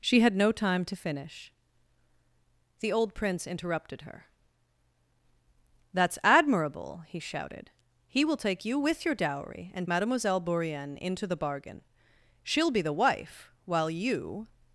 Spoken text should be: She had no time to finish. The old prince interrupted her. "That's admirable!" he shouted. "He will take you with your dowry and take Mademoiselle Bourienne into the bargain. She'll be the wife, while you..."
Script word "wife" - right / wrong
right